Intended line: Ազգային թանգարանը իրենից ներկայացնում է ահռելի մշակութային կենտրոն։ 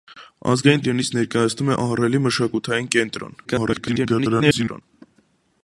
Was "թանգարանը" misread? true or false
true